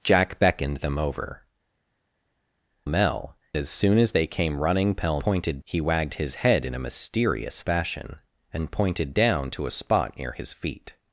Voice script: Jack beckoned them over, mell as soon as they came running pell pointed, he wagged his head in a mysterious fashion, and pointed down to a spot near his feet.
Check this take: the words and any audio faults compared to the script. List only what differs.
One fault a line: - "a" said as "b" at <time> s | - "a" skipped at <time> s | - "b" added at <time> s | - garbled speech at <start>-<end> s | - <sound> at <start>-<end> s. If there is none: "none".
none